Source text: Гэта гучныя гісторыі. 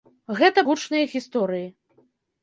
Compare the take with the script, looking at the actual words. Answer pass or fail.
pass